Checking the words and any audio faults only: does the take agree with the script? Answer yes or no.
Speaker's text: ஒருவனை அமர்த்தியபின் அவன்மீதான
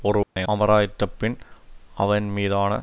no